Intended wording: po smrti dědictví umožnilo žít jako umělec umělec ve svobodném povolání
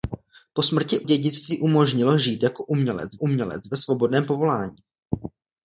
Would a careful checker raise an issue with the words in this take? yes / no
no